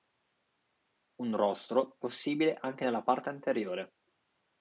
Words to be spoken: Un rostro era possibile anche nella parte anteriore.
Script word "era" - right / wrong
wrong